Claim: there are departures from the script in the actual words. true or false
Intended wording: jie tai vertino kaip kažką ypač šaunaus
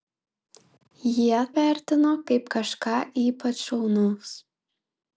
true